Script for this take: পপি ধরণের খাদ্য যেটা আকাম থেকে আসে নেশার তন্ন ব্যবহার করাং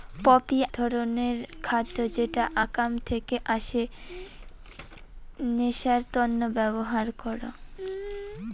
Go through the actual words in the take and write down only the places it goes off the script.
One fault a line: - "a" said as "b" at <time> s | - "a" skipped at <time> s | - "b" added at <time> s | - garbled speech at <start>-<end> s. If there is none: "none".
none